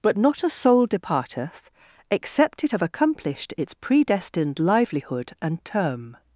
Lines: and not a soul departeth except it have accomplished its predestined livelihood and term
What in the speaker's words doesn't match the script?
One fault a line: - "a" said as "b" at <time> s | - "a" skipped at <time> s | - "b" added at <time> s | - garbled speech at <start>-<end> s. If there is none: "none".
- "and" said as "but" at 0.0 s